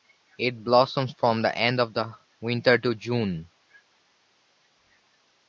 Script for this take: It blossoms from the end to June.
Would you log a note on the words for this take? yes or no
yes